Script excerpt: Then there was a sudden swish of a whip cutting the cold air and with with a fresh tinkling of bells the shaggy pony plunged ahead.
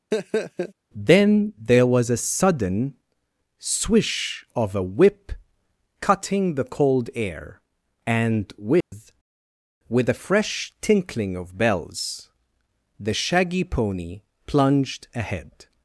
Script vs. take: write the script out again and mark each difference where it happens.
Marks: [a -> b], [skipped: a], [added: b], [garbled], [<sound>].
[laugh] Then there was a sudden swish of a whip cutting the cold air and with [dropout] with a fresh tinkling of bells the shaggy pony plunged ahead.